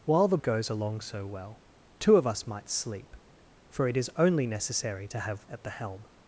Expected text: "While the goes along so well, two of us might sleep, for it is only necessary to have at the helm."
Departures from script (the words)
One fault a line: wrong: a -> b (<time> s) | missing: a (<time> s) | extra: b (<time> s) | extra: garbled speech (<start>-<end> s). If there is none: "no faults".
no faults